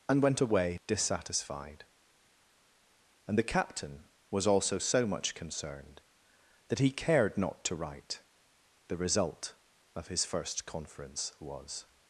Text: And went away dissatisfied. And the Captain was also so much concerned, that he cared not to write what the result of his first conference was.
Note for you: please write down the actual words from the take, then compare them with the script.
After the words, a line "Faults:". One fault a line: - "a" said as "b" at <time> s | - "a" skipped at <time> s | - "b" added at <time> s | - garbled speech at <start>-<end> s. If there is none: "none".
And went away dissatisfied. And the Captain was also so much concerned, that he cared not to write the result of his first conference was.
Faults:
- "what" skipped at 8.2 s